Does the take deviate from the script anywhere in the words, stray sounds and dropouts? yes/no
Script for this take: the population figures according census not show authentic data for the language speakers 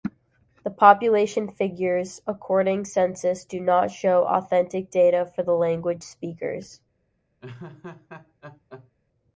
yes